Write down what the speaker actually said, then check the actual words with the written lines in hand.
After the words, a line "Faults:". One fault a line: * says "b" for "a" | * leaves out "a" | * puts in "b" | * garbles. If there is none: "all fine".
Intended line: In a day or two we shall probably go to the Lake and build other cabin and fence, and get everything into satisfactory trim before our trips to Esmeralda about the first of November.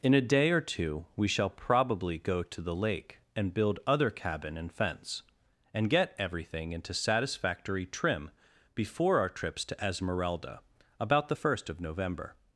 In a day or two we shall probably go to the Lake and build other cabin and fence, and get everything into satisfactory trim before our trips to Esmeralda about the first of November.
Faults:
all fine